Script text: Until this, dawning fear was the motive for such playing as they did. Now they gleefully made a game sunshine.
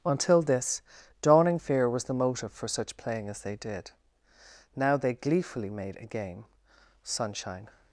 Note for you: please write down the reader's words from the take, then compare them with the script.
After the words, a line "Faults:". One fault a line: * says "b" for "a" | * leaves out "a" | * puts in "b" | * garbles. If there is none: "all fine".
Until this, dawning fear was the motive for such playing as they did. Now they gleefully made a game sunshine.
Faults:
all fine